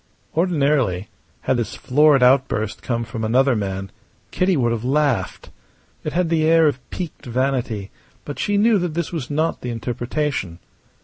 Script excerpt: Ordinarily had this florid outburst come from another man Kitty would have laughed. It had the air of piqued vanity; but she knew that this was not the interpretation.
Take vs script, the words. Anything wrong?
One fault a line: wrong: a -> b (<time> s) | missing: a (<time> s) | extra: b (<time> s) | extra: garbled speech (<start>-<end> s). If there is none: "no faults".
no faults